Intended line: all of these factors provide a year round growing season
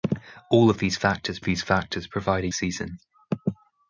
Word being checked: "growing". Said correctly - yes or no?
no